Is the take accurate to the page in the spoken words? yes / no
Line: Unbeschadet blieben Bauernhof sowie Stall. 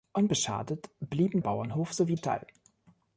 yes